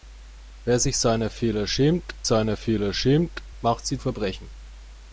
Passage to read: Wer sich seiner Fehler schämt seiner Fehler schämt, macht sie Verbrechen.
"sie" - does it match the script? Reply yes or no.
yes